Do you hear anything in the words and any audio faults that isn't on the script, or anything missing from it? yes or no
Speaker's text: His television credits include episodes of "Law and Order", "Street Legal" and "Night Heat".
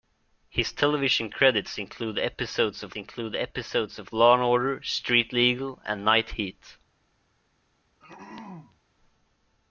yes